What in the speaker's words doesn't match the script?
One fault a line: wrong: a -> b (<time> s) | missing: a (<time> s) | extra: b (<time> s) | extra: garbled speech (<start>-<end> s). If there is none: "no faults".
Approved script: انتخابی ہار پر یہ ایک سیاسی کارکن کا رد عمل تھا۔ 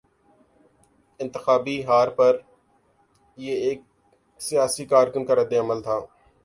no faults